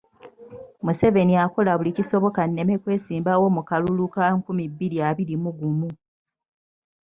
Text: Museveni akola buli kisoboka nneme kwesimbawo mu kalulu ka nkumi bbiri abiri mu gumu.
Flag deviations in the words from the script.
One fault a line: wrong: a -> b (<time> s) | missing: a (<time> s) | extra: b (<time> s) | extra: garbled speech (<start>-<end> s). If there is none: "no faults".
no faults